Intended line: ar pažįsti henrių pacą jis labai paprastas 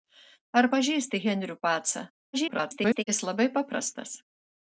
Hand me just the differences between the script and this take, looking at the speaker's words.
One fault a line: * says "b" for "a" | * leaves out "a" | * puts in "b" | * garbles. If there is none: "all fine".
* garbles